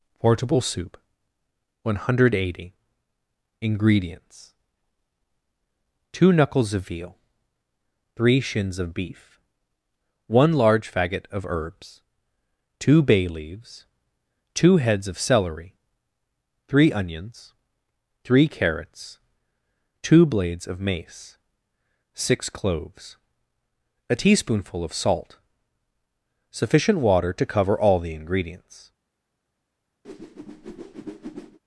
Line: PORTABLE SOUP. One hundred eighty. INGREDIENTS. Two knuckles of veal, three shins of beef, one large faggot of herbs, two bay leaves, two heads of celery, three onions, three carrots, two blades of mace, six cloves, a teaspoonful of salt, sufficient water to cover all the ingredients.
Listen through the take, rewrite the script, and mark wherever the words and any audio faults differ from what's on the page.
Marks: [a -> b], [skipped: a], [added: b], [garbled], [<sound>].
PORTABLE SOUP. One hundred eighty. INGREDIENTS. Two knuckles of veal, three shins of beef, one large faggot of herbs, two bay leaves, two heads of celery, three onions, three carrots, two blades of mace, six cloves, a teaspoonful of salt, sufficient water to cover all the ingredients. [whoosh]